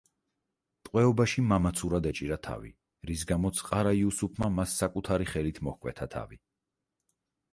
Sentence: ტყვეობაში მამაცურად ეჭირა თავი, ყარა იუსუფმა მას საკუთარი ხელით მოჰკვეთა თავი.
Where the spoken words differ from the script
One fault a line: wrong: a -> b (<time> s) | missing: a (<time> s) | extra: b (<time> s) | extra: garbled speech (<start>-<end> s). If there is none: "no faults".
extra: რის გამოც (3.1 s)